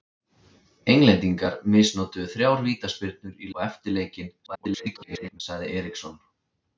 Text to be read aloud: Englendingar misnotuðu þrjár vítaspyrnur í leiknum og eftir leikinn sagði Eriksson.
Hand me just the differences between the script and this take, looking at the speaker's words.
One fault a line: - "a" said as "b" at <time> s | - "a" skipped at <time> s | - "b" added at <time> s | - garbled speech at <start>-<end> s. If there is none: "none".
- "leiknum" skipped at 3.5 s
- garbled speech at 4.5-5.4 s